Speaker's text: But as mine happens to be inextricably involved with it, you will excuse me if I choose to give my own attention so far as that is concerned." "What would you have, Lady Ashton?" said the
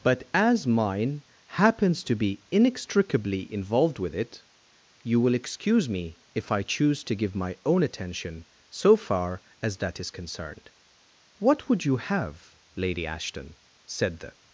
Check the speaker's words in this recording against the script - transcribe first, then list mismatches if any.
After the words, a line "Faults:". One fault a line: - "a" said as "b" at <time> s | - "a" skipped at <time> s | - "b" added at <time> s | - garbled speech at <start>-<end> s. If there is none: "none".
But as mine happens to be inextricably involved with it, you will excuse me if I choose to give my own attention so far as that is concerned." "What would you have, Lady Ashton?" said the
Faults:
none